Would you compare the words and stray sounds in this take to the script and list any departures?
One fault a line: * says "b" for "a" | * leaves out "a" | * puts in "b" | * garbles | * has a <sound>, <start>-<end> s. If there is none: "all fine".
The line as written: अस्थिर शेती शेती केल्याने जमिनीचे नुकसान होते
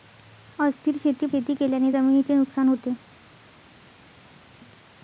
all fine